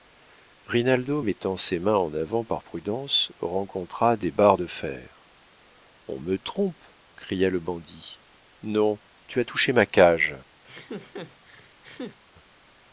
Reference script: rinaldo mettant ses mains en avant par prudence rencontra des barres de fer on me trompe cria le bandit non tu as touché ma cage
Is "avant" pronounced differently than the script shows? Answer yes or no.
no